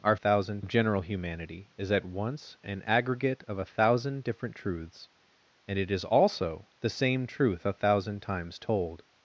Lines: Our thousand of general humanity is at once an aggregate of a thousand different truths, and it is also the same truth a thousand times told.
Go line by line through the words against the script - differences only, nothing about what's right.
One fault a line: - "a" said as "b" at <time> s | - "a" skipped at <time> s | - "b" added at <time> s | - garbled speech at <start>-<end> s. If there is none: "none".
none